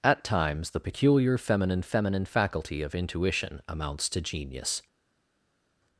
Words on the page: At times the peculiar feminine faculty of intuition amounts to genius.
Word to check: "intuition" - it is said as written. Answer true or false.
true